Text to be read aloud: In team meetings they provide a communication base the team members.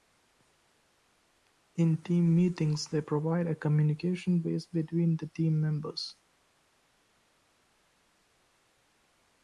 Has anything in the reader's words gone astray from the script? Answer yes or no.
yes